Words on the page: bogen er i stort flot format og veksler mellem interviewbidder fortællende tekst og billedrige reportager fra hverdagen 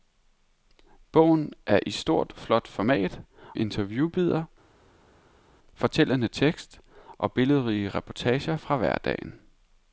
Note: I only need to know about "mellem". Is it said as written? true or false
false